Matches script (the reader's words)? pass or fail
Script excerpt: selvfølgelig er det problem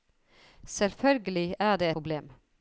pass